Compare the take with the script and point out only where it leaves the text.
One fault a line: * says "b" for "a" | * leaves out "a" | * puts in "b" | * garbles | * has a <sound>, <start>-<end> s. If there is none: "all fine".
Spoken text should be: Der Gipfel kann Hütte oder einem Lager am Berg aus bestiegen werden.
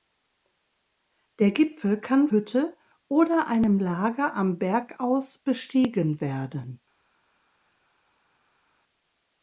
all fine